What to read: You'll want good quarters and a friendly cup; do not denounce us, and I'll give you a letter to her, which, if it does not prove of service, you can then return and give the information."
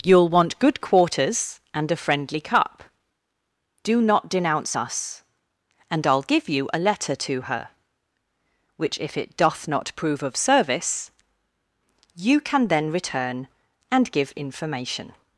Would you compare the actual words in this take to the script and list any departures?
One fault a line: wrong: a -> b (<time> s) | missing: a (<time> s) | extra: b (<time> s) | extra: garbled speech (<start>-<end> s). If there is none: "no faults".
wrong: does -> doth (9.3 s)
missing: the (14.3 s)